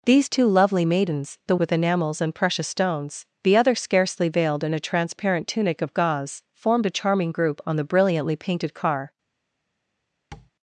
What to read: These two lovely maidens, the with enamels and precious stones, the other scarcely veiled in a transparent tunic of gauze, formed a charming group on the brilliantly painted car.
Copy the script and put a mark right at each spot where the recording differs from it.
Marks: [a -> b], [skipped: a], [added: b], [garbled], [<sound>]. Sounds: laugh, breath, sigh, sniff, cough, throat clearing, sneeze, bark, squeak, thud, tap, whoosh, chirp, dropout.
These two lovely maidens, the with enamels and precious stones, the other scarcely veiled in a transparent tunic of gauze, formed a charming group on the brilliantly painted car. [tap]